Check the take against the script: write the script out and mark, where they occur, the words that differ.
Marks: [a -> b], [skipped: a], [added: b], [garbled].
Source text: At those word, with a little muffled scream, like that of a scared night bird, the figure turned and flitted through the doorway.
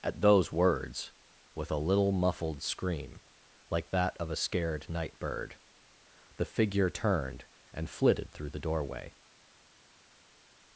At those [word, -> words] with a little muffled scream, like that of a scared night bird, the figure turned and flitted through the doorway.